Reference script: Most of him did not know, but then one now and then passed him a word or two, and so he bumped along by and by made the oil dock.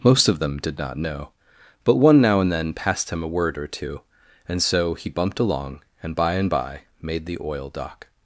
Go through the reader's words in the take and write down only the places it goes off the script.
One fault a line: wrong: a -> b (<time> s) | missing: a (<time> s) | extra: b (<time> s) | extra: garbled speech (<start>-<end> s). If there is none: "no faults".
wrong: him -> them (0.4 s)
missing: then (1.9 s)
extra: and (6.0 s)